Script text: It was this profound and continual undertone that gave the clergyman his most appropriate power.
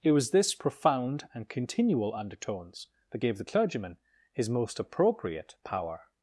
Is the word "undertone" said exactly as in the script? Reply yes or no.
no